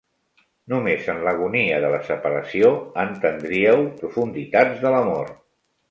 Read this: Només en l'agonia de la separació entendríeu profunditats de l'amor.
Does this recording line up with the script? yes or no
yes